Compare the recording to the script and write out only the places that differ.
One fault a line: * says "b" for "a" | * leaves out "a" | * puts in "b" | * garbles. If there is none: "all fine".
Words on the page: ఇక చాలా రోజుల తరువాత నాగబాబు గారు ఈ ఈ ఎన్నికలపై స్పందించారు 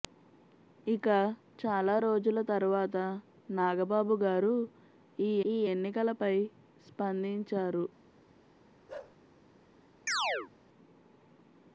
all fine